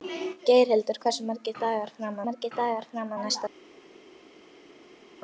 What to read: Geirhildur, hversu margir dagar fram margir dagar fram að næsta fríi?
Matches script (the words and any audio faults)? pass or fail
pass